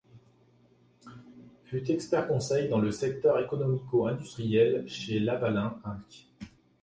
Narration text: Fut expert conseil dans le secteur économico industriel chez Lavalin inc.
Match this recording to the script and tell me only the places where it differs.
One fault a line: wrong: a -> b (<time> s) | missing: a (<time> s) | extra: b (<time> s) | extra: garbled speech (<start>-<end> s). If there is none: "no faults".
no faults